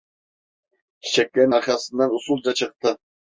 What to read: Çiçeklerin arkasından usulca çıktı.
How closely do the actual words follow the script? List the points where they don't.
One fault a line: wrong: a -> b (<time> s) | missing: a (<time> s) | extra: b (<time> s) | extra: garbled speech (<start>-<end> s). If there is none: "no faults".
no faults